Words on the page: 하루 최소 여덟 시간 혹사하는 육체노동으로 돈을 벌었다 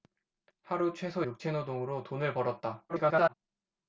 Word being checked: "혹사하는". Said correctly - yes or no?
no